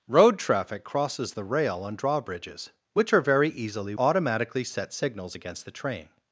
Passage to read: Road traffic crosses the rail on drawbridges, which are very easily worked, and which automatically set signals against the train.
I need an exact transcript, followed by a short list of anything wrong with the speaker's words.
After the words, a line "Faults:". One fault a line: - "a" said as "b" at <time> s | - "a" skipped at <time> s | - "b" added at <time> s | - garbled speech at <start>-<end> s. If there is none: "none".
Road traffic crosses the rail on drawbridges, which are very easily automatically set signals against the train.
Faults:
- "worked and which" skipped at 3.9 s